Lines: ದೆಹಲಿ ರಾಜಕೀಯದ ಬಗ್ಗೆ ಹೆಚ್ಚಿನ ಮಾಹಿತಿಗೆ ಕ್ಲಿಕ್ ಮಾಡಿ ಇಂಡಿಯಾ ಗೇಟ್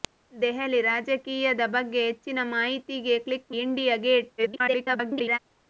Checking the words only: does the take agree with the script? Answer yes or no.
no